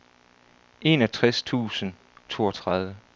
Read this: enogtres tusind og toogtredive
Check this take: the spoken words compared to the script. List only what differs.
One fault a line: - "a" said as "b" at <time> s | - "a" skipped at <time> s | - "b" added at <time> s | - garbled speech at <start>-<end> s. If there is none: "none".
- "og" skipped at 1.9 s